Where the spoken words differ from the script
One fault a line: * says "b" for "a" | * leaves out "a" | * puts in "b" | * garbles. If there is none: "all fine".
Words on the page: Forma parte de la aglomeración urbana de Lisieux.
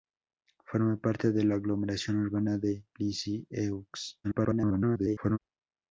* garbles